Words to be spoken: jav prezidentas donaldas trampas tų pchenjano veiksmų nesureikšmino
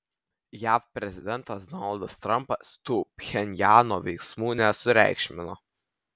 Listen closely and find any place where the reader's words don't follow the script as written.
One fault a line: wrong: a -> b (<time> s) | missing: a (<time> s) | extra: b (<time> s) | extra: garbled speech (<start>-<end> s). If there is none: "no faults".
no faults